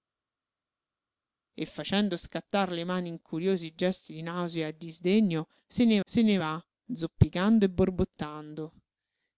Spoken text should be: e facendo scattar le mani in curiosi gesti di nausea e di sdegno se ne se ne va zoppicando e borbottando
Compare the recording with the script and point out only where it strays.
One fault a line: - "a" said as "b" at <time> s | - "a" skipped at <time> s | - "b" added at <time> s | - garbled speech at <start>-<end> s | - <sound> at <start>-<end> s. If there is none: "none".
none